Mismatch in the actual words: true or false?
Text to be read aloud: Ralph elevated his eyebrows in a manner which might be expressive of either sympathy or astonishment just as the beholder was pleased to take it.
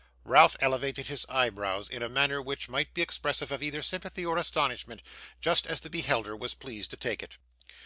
false